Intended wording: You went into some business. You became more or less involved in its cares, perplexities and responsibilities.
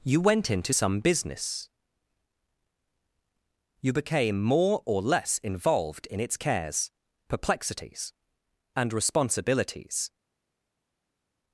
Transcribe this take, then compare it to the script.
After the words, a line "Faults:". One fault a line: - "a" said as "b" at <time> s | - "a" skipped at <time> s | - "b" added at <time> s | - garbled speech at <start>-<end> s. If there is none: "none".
You went into some business. You became more or less involved in its cares, perplexities and responsibilities.
Faults:
none